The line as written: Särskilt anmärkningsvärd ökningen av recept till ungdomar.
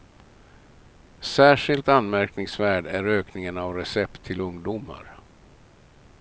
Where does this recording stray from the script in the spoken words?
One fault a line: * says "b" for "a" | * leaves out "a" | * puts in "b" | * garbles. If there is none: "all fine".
* puts in "är"